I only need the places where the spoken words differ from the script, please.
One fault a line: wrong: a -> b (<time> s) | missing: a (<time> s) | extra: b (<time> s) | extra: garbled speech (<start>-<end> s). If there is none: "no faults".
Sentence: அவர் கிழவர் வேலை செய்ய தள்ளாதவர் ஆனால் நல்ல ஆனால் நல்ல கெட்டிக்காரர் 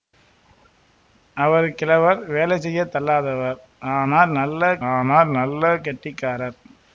no faults